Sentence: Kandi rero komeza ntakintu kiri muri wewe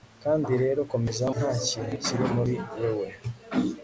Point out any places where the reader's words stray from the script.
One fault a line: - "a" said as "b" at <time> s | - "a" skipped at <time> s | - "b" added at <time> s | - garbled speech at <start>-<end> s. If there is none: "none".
none